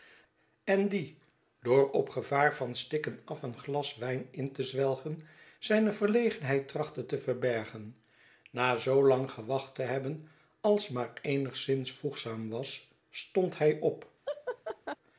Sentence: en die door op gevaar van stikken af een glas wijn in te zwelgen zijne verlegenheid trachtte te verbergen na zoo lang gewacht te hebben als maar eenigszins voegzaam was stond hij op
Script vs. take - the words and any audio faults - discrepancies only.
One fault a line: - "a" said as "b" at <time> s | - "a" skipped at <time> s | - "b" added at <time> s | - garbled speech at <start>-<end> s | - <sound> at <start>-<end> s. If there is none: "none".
- laugh at 14.2-15.0 s